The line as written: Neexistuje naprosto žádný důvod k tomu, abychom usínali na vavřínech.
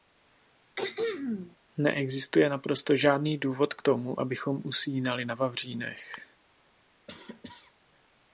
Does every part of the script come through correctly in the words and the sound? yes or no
no